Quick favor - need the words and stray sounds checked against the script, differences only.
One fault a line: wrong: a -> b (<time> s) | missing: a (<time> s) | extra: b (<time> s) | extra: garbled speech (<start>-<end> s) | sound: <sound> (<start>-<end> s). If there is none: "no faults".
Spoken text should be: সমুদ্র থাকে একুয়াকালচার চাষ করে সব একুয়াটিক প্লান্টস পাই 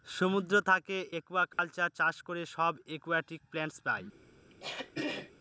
sound: dropout (1.5-1.6 s)
sound: throat clearing (4.5-5.3 s)